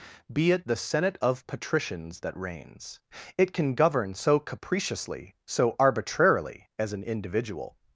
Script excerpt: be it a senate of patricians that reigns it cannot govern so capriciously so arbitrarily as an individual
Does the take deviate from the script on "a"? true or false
true